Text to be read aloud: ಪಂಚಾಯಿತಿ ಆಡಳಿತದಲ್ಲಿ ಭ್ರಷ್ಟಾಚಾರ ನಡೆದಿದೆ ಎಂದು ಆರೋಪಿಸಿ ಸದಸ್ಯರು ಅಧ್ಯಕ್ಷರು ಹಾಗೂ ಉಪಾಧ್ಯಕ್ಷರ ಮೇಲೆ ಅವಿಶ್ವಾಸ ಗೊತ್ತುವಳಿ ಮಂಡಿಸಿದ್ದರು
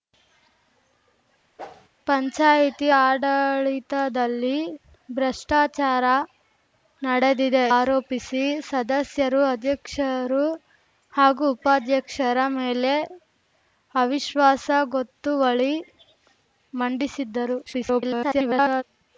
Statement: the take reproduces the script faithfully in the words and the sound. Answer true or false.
false